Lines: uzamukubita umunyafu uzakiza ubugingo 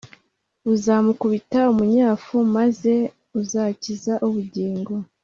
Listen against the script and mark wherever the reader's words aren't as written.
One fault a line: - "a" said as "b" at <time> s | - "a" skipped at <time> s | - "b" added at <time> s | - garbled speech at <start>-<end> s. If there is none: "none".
- "maze" added at 2.5 s